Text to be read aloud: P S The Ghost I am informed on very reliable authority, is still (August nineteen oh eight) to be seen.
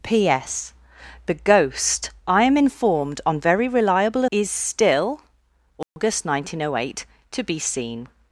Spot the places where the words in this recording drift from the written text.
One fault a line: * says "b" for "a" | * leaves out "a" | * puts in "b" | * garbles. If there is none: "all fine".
* leaves out "authority"